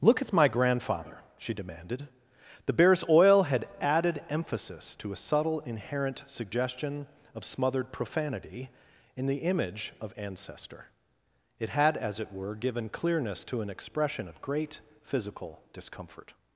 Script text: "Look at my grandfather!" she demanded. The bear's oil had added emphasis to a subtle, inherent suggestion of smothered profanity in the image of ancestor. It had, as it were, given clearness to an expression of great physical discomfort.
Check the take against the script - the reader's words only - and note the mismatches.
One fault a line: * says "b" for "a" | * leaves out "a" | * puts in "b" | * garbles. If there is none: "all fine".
all fine